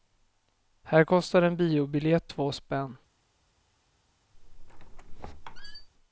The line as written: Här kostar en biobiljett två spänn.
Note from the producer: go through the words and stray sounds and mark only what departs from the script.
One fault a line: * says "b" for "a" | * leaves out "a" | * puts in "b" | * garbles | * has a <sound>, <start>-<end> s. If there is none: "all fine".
* has a squeak, 4.3-5.9 s